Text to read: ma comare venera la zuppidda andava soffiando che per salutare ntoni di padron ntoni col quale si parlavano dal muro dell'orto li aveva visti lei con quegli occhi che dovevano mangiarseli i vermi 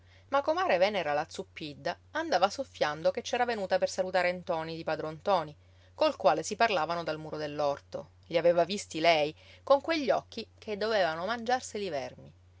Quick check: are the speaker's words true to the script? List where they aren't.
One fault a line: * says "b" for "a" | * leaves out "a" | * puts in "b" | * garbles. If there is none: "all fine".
* puts in "c'era venuta"